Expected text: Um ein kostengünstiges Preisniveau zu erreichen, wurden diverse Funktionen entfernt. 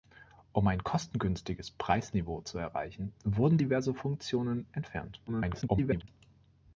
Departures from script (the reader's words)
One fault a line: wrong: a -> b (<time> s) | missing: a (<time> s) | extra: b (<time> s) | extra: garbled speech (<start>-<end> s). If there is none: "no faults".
extra: garbled speech (5.3-6.1 s)